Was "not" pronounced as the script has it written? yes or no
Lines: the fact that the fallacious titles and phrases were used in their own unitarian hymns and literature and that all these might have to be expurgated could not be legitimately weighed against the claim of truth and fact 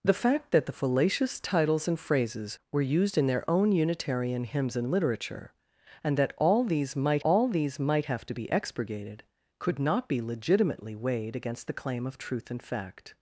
yes